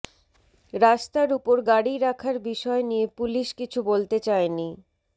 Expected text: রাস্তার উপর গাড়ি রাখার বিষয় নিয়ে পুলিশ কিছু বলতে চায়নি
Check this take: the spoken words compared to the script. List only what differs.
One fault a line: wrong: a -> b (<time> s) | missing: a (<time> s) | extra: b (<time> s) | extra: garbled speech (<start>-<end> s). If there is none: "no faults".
no faults